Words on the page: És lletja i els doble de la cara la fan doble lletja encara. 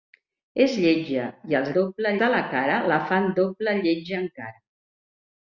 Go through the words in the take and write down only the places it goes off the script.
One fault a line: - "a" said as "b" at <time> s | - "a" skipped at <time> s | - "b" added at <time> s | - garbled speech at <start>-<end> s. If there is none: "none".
none